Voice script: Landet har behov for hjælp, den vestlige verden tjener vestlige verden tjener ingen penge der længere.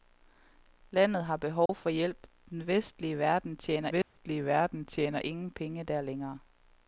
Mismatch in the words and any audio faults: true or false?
true